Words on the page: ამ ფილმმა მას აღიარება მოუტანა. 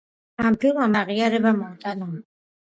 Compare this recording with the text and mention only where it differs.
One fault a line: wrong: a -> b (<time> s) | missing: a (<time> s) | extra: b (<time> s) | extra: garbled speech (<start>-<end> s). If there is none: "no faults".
missing: მას (0.9 s)